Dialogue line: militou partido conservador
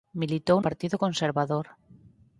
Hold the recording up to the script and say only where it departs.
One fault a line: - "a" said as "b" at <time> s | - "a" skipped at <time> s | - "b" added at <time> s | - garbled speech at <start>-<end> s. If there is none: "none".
none